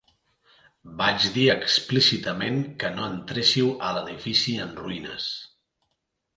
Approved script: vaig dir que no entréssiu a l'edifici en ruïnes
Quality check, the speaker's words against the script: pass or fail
fail